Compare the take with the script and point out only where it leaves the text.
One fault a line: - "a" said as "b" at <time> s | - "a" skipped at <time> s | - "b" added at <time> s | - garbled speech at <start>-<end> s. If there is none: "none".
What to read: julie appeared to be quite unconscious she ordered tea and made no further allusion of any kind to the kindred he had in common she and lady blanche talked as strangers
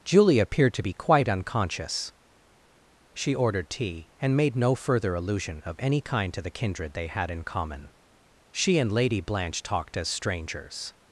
- "he" said as "they" at 6.9 s